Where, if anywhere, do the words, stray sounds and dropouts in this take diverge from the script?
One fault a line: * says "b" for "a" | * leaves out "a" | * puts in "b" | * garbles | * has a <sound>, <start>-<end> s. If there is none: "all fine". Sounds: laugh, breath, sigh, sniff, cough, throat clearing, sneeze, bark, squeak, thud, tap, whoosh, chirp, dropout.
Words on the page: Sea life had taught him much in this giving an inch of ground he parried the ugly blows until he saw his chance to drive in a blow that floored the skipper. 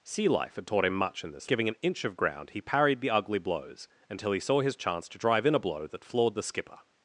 all fine